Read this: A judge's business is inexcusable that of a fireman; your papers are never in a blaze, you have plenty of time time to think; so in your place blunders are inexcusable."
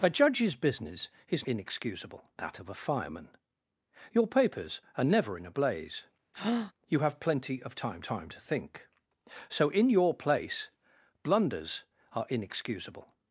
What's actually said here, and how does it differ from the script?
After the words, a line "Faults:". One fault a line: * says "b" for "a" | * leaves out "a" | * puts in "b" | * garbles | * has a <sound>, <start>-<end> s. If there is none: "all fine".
A judge's business is inexcusable that of a fireman; your papers are never in a blaze, you have plenty of time time to think; so in your place blunders are inexcusable."
Faults:
* has a breath, 6.3-6.7 s